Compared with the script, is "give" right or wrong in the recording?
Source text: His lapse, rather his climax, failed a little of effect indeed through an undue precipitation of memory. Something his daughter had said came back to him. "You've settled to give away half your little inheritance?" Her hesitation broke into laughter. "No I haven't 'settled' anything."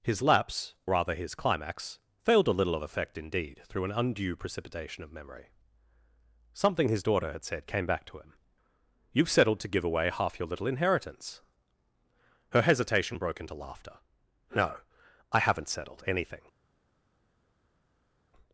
right